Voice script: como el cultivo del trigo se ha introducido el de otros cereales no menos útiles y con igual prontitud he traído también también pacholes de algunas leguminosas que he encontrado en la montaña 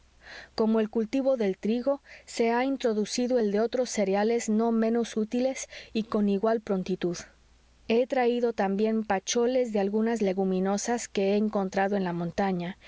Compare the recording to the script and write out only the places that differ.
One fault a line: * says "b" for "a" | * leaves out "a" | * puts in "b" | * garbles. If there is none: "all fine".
* leaves out "también"